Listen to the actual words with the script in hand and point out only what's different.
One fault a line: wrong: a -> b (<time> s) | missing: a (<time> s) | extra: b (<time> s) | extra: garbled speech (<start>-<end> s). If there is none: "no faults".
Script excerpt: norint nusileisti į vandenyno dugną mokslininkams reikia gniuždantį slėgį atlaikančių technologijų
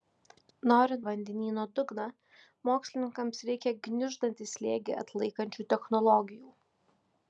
missing: nusileisti (1.0 s)